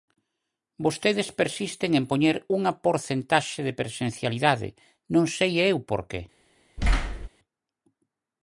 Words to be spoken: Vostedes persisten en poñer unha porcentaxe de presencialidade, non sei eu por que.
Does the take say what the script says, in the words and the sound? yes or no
no